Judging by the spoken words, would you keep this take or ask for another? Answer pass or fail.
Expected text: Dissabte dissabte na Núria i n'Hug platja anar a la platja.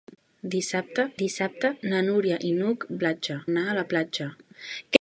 pass